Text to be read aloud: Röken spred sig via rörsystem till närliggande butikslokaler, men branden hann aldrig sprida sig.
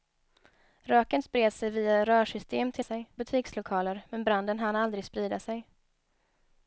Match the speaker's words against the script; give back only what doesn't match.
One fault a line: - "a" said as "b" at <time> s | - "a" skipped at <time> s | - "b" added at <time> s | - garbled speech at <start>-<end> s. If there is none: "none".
- "närliggande" said as "sig" at 2.8 s